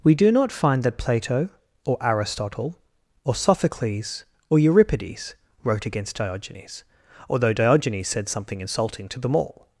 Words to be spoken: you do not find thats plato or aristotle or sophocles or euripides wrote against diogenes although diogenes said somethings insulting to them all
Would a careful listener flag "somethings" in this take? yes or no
yes